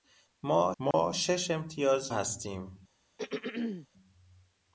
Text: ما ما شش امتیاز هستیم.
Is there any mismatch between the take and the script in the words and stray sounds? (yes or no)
yes